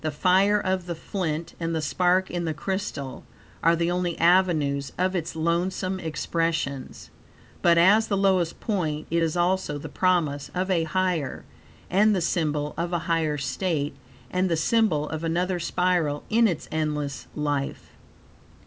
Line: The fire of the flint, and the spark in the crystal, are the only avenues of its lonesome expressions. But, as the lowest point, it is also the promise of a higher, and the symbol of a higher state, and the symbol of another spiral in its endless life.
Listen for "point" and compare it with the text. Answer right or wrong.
right